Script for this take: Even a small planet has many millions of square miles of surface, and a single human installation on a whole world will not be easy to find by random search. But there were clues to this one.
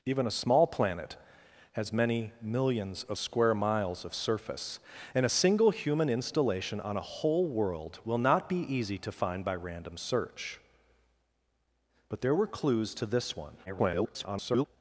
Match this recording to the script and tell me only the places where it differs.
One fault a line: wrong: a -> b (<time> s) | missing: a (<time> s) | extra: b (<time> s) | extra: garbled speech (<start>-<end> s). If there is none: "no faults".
extra: garbled speech (13.7-14.7 s)